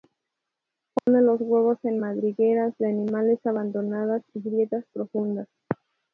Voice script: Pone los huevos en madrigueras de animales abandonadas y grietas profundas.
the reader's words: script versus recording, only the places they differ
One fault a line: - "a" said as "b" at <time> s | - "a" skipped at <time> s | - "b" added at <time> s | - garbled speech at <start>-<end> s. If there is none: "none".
none